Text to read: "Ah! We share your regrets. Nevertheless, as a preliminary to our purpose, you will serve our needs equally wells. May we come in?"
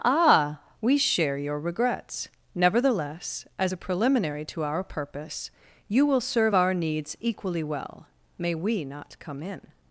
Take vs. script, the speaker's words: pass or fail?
fail